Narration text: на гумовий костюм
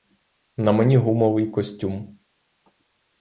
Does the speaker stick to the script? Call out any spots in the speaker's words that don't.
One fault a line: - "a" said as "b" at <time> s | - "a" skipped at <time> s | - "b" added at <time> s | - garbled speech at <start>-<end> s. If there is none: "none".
- "мені" added at 0.7 s